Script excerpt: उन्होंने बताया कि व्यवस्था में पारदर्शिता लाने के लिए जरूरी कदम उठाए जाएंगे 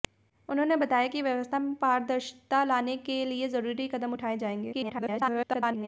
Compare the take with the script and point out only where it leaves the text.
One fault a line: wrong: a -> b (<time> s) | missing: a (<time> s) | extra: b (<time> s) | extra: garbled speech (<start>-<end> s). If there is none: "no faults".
extra: garbled speech (4.7-5.9 s)